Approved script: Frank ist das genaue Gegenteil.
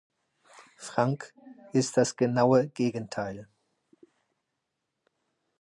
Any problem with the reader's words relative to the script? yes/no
no